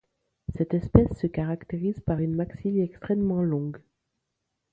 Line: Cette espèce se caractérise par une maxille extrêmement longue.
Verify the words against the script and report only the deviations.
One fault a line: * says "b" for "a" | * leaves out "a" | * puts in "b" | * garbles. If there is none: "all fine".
all fine